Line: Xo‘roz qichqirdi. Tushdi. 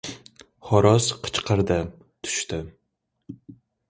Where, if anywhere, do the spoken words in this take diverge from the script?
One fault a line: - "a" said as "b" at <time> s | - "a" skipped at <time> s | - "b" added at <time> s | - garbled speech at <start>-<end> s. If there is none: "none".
none